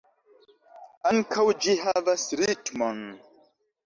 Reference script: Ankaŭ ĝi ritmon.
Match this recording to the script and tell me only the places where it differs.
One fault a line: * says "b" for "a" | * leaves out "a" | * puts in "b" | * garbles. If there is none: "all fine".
* puts in "havas"